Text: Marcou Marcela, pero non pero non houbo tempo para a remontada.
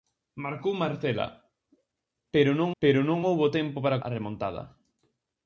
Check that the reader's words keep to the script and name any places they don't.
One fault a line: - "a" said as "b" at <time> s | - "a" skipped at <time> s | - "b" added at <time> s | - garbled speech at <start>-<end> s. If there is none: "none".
none